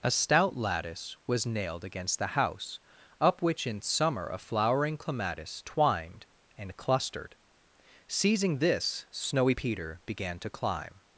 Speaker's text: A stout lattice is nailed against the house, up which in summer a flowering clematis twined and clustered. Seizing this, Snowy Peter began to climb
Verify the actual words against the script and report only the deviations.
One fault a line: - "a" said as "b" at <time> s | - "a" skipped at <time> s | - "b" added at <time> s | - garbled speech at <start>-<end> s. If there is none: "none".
- "is" said as "was" at 1.3 s